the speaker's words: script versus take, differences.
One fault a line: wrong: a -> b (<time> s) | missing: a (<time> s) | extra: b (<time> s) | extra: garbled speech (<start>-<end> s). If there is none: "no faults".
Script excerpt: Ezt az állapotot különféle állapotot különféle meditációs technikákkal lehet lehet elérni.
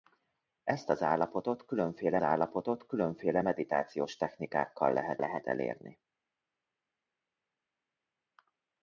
no faults